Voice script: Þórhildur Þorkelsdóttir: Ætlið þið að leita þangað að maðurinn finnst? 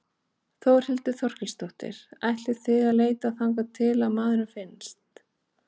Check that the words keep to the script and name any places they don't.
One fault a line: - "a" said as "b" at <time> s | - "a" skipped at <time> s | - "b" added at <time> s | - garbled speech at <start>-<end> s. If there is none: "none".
- "til" added at 3.8 s